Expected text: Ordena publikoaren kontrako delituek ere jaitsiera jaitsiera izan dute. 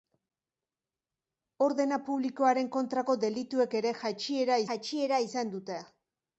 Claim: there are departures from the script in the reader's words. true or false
false